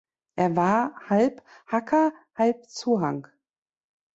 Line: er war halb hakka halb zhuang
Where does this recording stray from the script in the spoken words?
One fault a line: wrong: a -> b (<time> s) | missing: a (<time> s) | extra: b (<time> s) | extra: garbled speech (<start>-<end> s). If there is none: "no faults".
no faults